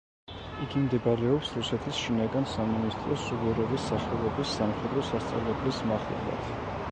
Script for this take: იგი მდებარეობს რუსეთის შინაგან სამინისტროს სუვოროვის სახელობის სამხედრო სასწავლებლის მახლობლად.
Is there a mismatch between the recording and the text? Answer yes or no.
no